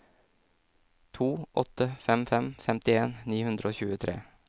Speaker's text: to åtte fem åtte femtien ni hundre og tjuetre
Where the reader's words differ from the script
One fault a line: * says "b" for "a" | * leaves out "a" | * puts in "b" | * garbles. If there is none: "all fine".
* says "fem" for "åtte"